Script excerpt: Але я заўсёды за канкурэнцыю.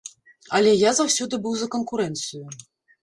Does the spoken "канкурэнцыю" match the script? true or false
true